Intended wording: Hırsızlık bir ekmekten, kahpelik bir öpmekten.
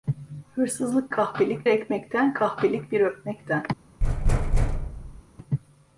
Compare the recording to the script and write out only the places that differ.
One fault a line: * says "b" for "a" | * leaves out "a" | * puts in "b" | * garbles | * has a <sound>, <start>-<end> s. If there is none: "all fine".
* says "kahpelik" for "bir"
* has a thud, 4.0-5.2 s